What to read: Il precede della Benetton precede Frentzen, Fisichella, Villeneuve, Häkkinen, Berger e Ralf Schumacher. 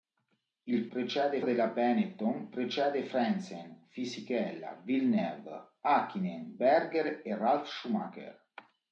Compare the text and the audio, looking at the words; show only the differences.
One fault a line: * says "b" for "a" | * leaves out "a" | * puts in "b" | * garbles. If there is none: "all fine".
all fine